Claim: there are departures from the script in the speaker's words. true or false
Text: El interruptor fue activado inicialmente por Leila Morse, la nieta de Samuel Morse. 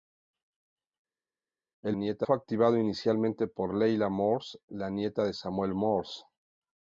true